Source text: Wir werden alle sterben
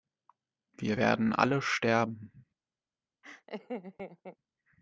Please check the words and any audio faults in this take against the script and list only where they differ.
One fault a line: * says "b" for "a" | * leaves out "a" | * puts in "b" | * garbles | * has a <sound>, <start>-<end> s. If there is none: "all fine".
* has a laugh, 3.2-4.4 s